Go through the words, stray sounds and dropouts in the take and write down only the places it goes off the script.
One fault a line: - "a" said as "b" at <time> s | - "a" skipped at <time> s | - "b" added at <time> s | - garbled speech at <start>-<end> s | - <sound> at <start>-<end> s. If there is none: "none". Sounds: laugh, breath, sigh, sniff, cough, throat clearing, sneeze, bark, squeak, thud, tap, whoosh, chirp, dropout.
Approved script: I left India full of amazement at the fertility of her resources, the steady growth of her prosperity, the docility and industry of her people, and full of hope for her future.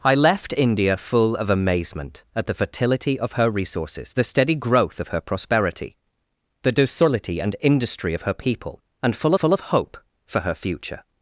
- "full" added at 9.3 s